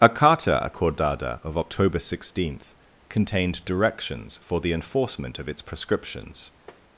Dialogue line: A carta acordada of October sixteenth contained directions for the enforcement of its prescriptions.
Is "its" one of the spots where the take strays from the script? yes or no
no